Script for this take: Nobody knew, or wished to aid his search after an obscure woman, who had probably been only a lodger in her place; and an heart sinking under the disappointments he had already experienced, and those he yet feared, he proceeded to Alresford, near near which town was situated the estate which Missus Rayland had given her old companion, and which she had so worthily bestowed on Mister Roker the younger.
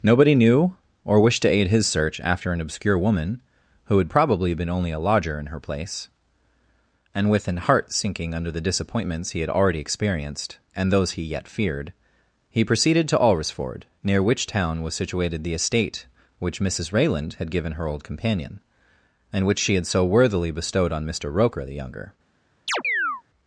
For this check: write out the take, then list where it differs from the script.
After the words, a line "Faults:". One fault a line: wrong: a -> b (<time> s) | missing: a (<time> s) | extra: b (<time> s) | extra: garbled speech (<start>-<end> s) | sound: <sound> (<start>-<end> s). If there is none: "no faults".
Nobody knew, or wished to aid his search after an obscure woman, who had probably been only a lodger in her place; and with an heart sinking under the disappointments he had already experienced, and those he yet feared, he proceeded to Alresford, near which town was situated the estate which Missus Rayland had given her old companion, and which she had so worthily bestowed on Mister Roker the younger.
Faults:
extra: with (7.3 s)
missing: near (14.2 s)
sound: chirp (22.7-23.2 s)